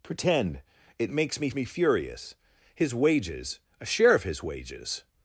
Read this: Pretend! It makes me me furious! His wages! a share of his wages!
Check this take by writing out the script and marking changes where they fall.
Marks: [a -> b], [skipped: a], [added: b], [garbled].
Pretend! It makes me me furious! His wages! a share of his wages!